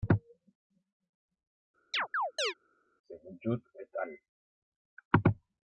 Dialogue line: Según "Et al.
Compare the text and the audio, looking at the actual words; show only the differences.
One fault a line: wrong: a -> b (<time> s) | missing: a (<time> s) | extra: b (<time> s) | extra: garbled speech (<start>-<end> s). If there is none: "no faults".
extra: Judd (3.4 s)